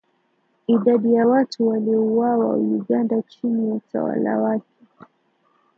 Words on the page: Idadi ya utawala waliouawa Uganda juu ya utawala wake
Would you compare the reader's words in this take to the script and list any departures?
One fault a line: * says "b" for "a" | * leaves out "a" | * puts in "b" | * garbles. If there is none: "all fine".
* says "watu" for "utawala"
* says "chini" for "juu"